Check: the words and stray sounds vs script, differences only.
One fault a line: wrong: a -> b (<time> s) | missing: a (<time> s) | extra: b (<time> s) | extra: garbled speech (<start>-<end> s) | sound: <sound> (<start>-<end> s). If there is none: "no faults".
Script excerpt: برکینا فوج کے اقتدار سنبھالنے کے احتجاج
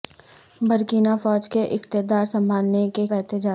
no faults